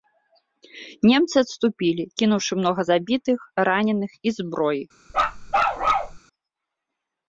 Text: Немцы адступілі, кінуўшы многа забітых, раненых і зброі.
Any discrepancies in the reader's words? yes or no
no